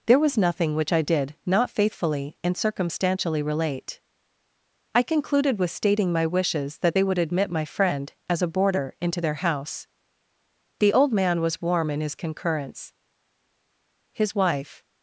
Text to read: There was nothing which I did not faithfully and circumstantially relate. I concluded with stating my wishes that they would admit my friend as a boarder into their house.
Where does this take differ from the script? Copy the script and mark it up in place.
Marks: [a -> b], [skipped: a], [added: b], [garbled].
There was nothing which I did not faithfully and circumstantially relate. I concluded with stating my wishes that they would admit my friend as a boarder into their house. [added: The old man was warm in his concurrence His wife]